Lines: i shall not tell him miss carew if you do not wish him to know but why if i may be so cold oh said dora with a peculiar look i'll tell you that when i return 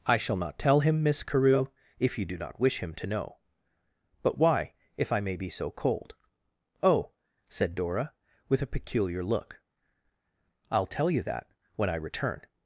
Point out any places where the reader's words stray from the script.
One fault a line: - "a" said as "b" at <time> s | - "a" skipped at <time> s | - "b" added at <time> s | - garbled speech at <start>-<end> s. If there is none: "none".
none